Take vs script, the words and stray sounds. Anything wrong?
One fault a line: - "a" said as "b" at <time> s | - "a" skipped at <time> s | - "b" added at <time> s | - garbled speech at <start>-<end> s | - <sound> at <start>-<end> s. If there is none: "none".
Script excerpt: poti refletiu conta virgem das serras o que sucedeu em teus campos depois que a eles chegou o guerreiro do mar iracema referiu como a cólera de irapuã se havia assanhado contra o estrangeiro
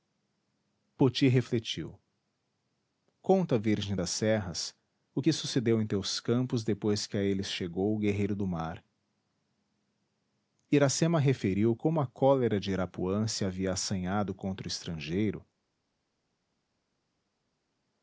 none